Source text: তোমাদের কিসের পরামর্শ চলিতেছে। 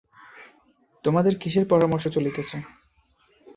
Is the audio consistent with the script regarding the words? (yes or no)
yes